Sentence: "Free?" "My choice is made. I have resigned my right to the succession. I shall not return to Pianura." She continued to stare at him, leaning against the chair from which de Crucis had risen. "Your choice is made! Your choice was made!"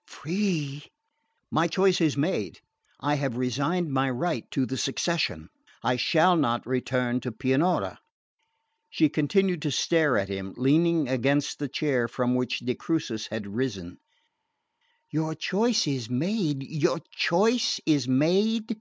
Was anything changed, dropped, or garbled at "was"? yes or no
yes